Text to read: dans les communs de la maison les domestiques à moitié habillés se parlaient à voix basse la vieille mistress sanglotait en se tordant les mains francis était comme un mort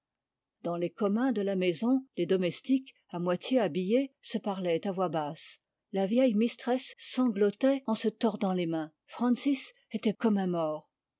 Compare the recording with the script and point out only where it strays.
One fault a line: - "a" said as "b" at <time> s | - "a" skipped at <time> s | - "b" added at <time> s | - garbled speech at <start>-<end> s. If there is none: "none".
none